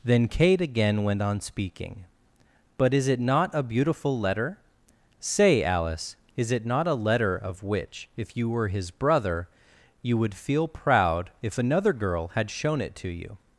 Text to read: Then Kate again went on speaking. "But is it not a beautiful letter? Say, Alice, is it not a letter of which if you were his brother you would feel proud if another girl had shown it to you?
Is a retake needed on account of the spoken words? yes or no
no